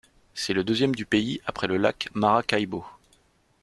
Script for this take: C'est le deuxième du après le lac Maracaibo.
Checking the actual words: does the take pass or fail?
fail